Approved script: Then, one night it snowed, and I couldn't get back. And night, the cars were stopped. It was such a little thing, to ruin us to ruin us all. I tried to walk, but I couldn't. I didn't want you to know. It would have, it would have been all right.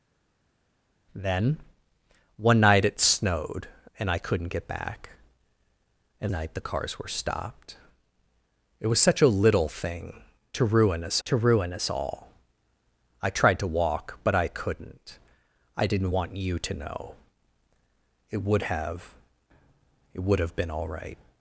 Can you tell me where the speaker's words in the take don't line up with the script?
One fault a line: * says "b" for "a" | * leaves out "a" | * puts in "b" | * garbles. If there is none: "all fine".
all fine